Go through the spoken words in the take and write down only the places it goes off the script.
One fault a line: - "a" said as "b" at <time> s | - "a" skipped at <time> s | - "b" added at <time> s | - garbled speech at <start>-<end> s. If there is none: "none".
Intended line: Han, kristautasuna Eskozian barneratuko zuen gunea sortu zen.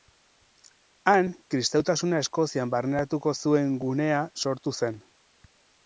none